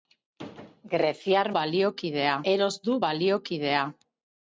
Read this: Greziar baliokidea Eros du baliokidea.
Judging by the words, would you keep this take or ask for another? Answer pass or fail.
pass